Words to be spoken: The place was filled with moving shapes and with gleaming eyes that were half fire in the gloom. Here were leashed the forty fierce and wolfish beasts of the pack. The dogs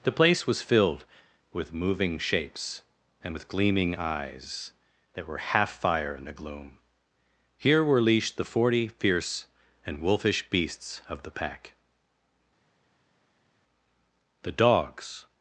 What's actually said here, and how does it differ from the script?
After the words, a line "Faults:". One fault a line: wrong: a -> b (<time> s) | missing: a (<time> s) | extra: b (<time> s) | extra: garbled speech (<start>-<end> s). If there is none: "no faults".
The place was filled with moving shapes and with gleaming eyes that were half fire in the gloom. Here were leashed the forty fierce and wolfish beasts of the pack. The dogs
Faults:
no faults